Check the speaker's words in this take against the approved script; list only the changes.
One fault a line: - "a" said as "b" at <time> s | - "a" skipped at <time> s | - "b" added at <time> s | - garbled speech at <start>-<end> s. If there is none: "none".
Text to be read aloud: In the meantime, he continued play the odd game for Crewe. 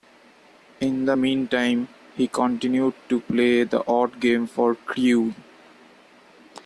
- "to" added at 3.1 s